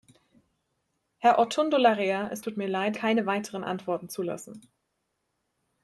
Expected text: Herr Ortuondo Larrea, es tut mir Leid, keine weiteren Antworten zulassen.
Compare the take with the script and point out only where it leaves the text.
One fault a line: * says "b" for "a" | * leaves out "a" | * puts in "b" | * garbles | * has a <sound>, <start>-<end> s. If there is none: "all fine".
all fine